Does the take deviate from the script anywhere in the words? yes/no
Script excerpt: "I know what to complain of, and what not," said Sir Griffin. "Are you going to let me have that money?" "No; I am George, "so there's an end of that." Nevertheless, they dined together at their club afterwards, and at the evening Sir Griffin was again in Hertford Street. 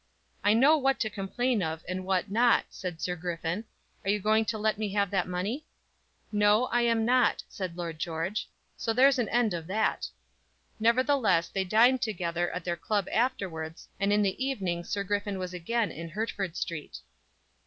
yes